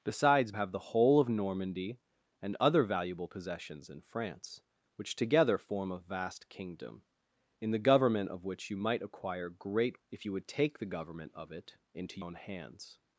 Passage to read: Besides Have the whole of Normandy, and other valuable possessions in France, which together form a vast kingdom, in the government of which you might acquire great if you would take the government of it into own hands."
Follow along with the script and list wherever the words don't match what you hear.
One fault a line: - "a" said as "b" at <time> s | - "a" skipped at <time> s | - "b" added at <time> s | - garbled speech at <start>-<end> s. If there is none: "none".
none